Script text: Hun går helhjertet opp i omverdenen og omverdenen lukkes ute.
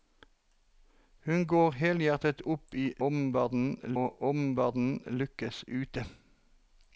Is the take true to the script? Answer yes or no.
yes